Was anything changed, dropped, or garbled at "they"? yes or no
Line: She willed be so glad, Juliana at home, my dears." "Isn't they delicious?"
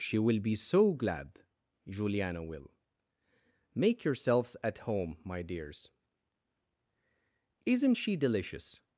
yes